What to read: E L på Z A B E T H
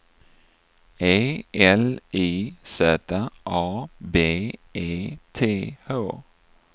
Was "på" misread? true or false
true